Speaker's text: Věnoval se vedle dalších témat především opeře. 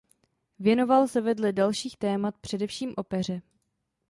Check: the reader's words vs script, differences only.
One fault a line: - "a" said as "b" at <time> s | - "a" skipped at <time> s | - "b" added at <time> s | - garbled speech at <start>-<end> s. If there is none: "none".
none